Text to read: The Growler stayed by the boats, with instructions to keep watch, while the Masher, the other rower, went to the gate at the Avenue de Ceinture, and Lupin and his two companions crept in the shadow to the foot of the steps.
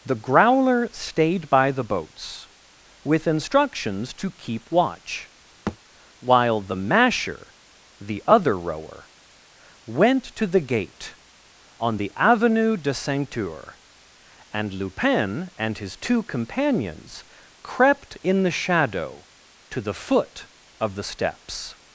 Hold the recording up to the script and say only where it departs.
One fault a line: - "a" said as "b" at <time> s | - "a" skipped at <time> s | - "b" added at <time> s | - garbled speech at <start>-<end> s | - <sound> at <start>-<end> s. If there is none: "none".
- thud at 5.7-5.8 s
- "at" said as "on" at 11.8 s